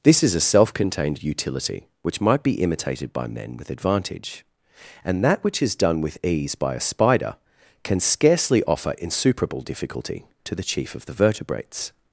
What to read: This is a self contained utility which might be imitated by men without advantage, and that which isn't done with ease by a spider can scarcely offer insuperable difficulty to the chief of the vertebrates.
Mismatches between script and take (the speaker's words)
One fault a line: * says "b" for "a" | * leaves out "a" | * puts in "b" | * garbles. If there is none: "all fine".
* says "with" for "without"
* says "is" for "isn't"